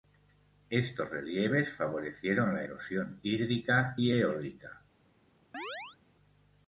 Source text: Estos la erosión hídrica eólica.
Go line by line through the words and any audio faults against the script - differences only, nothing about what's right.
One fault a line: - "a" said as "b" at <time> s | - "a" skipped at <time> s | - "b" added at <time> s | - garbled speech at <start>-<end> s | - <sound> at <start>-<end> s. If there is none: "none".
- "relieves favorecieron" added at 1.1 s
- "y" added at 4.0 s
- chirp at 5.5-6.0 s